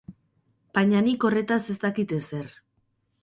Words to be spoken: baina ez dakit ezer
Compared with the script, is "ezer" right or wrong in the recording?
right